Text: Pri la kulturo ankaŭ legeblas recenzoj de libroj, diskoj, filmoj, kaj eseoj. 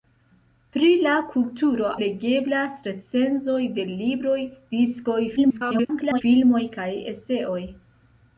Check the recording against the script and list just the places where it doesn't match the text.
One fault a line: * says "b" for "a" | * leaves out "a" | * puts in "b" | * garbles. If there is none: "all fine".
* leaves out "ankaŭ"
* garbles